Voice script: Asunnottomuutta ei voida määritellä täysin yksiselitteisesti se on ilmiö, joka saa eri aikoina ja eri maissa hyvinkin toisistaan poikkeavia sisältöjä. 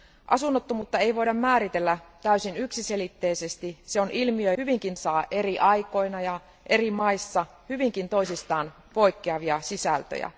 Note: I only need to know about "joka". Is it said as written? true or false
false